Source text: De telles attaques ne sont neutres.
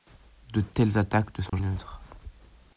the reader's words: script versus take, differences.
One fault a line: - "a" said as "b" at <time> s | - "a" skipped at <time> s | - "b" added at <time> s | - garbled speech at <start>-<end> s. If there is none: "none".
none